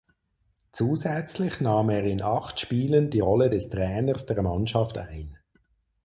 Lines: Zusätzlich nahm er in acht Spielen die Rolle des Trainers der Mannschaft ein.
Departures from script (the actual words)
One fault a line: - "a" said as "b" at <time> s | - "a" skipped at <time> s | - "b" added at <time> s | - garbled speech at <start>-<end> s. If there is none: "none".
none